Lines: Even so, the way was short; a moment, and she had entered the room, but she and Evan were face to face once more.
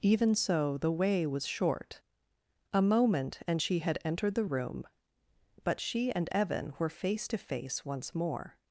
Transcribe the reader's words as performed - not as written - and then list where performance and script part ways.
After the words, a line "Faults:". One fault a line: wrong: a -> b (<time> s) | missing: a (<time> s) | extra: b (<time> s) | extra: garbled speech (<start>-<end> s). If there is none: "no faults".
Even so, the way was short; a moment, and she had entered the room, but she and Evan were face to face once more.
Faults:
no faults